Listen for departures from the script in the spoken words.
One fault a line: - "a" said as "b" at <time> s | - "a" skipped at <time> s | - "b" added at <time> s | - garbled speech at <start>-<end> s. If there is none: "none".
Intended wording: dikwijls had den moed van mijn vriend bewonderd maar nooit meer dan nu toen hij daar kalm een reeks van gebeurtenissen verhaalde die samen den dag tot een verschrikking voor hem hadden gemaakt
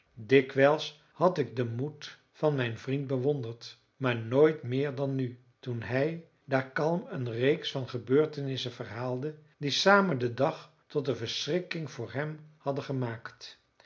- "ik" added at 1.4 s